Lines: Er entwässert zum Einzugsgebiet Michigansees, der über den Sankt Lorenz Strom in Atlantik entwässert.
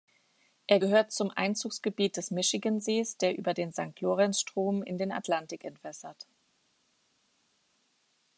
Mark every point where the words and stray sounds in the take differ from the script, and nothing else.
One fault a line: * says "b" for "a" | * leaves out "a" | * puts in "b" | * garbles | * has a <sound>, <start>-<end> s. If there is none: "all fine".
* says "gehört" for "entwässert"
* puts in "des"
* puts in "den"